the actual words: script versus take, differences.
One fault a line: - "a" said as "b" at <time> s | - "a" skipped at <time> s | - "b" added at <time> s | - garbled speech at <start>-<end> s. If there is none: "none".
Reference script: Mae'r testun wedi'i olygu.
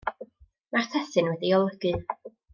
none